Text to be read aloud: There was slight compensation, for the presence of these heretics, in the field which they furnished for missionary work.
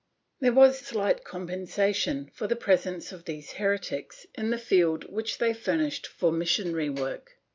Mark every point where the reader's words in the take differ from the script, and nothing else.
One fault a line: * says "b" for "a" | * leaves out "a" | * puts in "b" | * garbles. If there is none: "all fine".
all fine